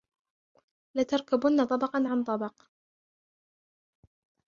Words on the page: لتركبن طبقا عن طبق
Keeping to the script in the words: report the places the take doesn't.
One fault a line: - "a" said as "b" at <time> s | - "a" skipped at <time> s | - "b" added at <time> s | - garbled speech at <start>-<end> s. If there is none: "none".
none